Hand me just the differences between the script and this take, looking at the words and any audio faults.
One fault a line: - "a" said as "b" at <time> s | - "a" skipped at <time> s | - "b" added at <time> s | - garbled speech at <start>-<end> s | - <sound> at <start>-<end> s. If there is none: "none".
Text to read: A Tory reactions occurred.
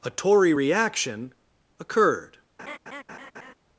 - "reactions" said as "reaction" at 0.5 s
- laugh at 2.6-3.5 s